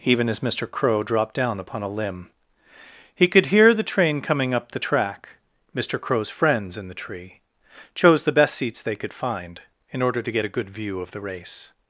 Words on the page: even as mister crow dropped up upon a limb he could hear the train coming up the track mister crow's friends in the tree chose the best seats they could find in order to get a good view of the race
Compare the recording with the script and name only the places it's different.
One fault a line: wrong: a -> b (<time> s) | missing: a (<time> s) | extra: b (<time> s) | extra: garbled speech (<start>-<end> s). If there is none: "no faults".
wrong: up -> down (1.4 s)